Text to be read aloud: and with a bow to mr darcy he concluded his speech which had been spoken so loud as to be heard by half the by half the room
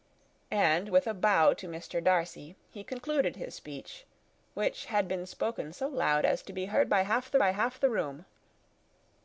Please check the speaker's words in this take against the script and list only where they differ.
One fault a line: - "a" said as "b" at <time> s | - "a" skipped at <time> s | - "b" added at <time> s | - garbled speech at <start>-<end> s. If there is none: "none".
none